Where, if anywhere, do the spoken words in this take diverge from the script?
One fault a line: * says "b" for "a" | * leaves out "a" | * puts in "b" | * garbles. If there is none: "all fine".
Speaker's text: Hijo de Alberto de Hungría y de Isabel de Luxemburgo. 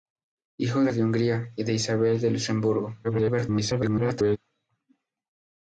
* leaves out "Alberto"
* garbles